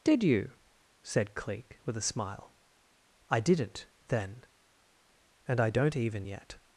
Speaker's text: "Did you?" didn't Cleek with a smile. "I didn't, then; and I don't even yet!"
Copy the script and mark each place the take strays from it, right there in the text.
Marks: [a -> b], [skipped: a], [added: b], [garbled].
"Did you?" [didn't -> said] Cleek with a smile. "I didn't, then; and I don't even yet!"